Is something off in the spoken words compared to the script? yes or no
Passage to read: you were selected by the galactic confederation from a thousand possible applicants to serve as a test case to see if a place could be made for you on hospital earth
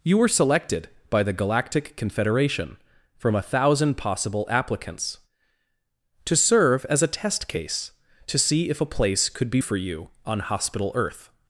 yes